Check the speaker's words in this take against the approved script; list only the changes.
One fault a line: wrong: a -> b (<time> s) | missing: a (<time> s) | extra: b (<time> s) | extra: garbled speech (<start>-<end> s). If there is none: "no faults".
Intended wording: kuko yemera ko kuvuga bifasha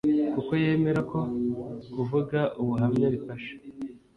extra: ubuhamya (2.6 s)